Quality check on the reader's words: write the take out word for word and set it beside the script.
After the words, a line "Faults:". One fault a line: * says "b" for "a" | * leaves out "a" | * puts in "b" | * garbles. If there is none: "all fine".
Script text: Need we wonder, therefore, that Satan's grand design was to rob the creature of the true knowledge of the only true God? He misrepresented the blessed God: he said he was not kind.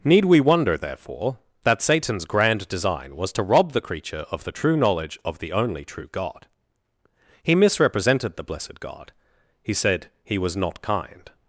Need we wonder, therefore, that Satan's grand design was to rob the creature of the true knowledge of the only true God? He misrepresented the blessed God: he said he was not kind.
Faults:
all fine